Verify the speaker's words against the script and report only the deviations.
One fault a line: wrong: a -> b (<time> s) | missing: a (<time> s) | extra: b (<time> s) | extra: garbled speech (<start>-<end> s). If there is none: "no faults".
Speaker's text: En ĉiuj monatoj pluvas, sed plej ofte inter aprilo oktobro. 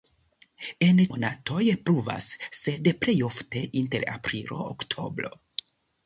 missing: ĉiuj (1.0 s)